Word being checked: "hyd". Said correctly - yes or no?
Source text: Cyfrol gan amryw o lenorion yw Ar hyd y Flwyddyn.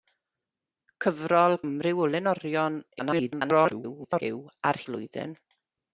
no